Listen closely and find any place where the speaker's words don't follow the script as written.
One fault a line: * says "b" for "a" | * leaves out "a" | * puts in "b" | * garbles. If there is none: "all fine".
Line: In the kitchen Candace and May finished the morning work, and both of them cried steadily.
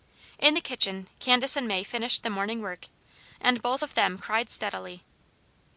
all fine